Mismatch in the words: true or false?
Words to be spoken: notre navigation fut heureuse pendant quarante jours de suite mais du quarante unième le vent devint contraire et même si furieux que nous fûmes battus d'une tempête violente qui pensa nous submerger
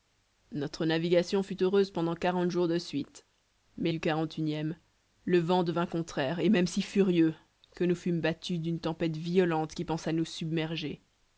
false